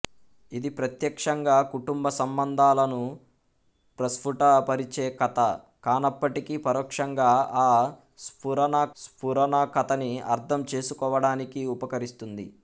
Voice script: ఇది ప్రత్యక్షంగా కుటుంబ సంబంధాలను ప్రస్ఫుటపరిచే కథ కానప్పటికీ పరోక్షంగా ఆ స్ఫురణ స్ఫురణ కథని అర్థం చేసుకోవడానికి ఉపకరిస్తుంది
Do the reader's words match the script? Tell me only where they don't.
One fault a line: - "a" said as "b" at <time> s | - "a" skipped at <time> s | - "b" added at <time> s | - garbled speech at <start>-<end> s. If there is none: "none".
none